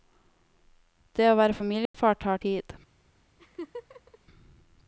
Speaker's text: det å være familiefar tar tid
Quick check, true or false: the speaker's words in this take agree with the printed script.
true